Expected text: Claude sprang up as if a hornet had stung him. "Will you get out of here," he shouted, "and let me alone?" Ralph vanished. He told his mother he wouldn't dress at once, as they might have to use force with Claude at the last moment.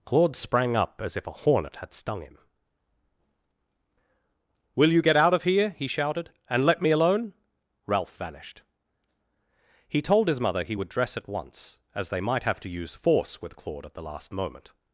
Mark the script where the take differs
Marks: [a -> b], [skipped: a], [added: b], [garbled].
Claude sprang up as if a hornet had stung him. "Will you get out of here," he shouted, "and let me alone?" Ralph vanished. He told his mother he [wouldn't -> would] dress at once, as they might have to use force with Claude at the last moment.